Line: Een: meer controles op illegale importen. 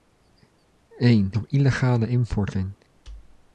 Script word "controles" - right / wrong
wrong